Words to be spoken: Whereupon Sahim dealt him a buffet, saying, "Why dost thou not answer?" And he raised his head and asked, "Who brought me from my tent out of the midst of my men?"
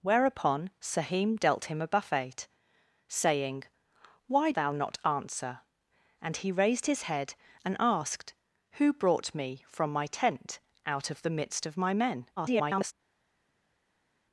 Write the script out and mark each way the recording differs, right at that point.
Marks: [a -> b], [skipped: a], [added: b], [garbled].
Whereupon Sahim dealt him a buffet, saying, "Why [skipped: dost] thou not answer?" And he raised his head and asked, "Who brought me from my tent out of the midst of my men?" [garbled]